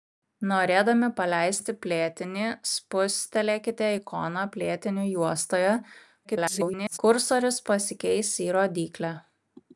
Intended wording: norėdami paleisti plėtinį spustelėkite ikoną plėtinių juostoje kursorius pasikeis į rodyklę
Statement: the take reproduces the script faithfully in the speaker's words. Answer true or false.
false